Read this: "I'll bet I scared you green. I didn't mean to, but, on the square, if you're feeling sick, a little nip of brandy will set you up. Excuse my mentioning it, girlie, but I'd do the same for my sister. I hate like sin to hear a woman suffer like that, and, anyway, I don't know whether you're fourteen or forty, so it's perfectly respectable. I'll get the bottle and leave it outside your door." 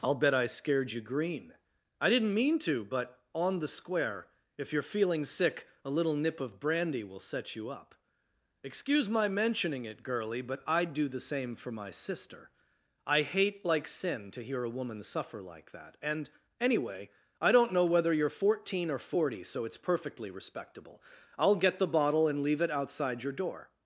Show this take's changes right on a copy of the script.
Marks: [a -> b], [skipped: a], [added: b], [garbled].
"I'll bet I scared you green. I didn't mean to, but, on the square, if you're feeling sick, a little nip of brandy will set you up. Excuse my mentioning it, girlie, but I'd do the same for my sister. I hate like sin to hear a woman suffer like that, and, anyway, I don't know whether you're fourteen or forty, so it's perfectly respectable. I'll get the bottle and leave it outside your door."